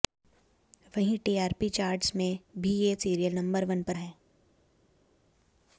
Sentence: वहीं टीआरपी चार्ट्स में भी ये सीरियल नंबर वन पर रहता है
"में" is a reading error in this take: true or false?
false